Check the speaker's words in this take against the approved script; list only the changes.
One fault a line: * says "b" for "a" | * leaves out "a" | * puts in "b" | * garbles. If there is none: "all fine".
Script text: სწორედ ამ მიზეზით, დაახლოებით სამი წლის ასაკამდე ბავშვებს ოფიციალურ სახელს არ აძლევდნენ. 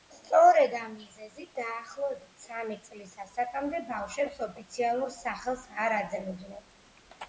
all fine